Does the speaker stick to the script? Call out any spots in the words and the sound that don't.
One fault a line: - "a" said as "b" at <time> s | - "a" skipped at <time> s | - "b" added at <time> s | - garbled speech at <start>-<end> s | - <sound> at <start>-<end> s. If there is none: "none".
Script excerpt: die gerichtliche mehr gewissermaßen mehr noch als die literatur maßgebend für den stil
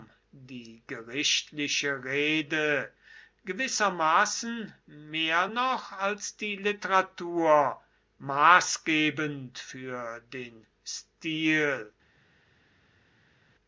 - "mehr" said as "rede" at 2.0 s